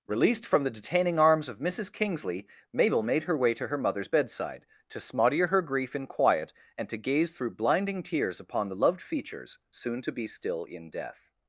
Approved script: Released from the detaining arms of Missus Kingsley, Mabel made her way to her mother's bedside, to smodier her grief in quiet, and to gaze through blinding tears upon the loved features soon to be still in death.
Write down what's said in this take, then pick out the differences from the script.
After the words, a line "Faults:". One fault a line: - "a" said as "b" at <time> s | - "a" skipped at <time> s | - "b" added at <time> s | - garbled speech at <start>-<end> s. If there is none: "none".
Released from the detaining arms of Missus Kingsley, Mabel made her way to her mother's bedside, to smodier her grief in quiet, and to gaze through blinding tears upon the loved features soon to be still in death.
Faults:
none